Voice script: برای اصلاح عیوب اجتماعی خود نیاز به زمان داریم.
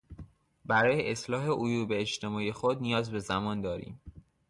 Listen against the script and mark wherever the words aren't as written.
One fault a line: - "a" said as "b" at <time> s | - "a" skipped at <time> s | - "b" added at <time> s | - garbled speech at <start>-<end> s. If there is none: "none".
none